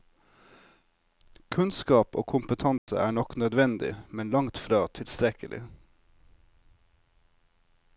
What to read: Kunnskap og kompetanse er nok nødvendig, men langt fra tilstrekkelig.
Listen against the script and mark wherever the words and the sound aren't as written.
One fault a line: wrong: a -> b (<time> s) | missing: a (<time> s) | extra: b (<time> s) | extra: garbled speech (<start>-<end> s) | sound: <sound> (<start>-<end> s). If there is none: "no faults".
sound: dropout (2.8-2.9 s)